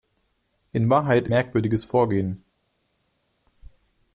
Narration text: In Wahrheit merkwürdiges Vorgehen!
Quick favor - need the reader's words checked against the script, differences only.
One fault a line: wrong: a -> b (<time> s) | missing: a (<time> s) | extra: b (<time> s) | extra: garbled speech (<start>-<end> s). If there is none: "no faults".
no faults